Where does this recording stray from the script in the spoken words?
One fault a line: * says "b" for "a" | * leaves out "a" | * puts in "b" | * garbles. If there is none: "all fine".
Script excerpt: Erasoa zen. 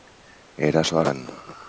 all fine